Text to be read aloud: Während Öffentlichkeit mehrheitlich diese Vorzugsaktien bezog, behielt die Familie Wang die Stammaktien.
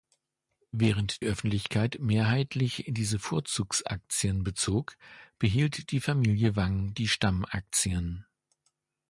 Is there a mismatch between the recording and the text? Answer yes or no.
no